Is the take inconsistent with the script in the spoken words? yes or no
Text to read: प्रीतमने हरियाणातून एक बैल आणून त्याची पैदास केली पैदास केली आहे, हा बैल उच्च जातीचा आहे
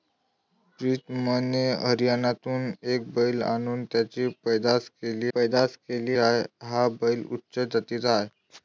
no